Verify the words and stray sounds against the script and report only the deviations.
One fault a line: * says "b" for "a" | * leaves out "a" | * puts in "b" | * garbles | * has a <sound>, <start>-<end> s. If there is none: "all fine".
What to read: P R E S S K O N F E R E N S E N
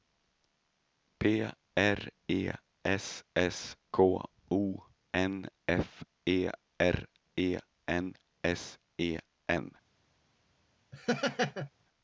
* has a laugh, 10.9-11.7 s